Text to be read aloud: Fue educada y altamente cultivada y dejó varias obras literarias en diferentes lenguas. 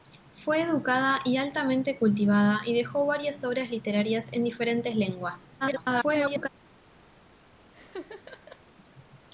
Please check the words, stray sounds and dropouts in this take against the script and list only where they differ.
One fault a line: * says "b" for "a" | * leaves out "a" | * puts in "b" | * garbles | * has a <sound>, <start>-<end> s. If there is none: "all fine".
* garbles
* has a laugh, 7.7-8.6 s